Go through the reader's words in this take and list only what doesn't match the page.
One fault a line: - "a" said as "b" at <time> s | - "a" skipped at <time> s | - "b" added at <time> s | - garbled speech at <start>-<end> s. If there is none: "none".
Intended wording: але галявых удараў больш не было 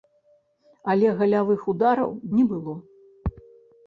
- "больш" skipped at 2.1 s